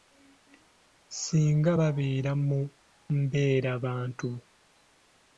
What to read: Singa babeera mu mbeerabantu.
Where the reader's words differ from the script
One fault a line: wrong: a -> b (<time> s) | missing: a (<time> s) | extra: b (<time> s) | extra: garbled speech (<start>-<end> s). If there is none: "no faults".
no faults